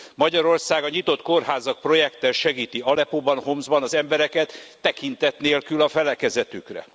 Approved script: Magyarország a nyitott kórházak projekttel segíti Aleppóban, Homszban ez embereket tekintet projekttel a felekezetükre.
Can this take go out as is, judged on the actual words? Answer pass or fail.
fail